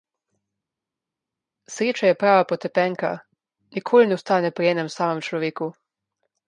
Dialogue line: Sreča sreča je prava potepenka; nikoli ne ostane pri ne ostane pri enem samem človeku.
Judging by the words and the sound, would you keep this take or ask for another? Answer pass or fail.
fail